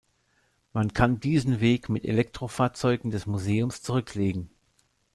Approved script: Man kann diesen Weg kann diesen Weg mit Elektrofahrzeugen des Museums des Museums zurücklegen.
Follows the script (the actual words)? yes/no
no